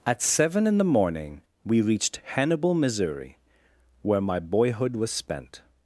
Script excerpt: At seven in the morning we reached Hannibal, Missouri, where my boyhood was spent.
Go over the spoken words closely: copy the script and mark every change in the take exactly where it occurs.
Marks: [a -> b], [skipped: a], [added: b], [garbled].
At seven in the morning we reached Hannibal, Missouri, where my boyhood was spent.